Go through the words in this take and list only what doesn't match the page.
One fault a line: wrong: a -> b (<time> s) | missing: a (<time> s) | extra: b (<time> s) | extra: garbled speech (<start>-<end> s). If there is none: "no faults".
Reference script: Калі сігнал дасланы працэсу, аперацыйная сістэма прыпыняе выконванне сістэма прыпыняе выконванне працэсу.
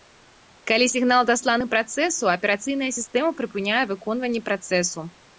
missing: сістэма прыпыняе выконванне (4.4 s)